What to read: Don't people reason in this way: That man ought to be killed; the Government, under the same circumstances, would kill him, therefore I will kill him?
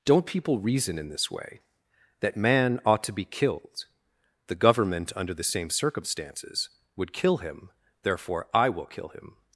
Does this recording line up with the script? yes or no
yes